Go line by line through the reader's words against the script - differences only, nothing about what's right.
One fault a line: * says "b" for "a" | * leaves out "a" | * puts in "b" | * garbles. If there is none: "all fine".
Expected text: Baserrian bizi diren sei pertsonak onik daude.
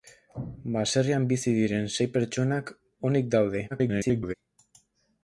* garbles